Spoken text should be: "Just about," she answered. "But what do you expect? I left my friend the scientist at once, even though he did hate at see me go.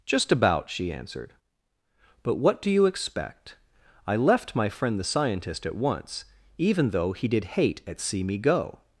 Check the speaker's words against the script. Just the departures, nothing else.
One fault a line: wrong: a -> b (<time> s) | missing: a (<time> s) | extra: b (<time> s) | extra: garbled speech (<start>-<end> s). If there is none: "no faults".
no faults